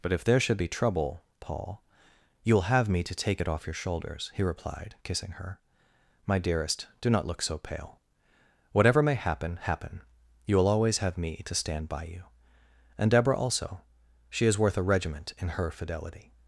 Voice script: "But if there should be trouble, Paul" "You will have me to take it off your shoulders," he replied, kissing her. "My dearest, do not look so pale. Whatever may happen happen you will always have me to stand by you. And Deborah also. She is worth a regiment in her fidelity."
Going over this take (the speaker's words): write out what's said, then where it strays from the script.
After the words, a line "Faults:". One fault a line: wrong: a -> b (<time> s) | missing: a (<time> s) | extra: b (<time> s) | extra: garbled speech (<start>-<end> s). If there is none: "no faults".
"But if there should be trouble, Paul" "You will have me to take it off your shoulders," he replied, kissing her. "My dearest, do not look so pale. Whatever may happen happen you will always have me to stand by you. And Deborah also. She is worth a regiment in her fidelity."
Faults:
no faults